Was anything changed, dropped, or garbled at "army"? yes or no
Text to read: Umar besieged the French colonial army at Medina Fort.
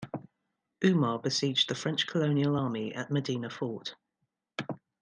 no